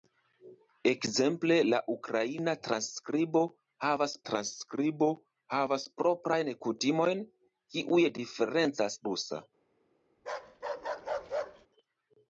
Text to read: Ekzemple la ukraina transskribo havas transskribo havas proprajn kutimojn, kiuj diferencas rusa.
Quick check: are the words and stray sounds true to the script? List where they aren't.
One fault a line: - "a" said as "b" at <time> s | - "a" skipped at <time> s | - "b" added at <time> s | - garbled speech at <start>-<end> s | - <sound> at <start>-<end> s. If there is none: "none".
- bark at 10.2-11.7 s